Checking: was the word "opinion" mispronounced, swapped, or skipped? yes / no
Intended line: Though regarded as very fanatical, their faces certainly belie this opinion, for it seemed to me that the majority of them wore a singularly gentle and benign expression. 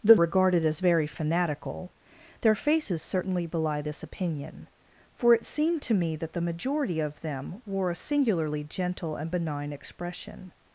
no